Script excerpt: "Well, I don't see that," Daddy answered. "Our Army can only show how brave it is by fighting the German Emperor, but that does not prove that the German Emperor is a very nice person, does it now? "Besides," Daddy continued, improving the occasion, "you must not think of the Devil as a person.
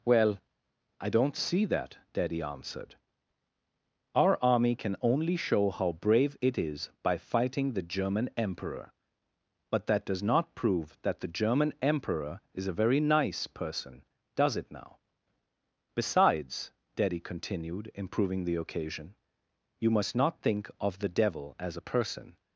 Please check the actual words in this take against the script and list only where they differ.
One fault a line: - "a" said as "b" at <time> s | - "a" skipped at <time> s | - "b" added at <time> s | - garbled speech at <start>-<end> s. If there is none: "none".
none